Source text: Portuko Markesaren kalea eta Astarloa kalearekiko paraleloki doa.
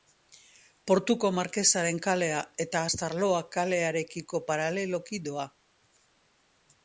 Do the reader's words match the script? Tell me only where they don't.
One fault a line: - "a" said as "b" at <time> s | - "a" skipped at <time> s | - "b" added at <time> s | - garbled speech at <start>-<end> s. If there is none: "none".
none